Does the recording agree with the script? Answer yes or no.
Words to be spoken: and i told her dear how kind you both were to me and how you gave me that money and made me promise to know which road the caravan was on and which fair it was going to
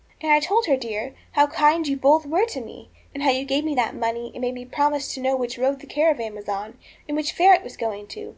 yes